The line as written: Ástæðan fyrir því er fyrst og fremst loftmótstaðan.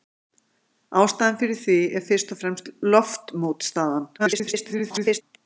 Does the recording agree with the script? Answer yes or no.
no